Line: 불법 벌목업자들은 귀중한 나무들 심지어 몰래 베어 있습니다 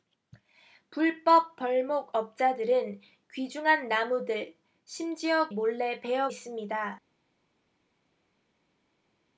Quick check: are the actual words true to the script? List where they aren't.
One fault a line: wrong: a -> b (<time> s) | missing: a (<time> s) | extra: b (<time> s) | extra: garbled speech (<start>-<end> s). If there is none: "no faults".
no faults